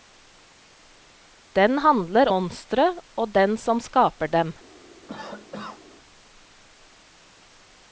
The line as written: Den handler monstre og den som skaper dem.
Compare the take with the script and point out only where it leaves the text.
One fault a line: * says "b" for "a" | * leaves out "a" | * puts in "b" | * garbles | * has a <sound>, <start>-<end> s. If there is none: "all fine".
* has a cough, 5.1-5.8 s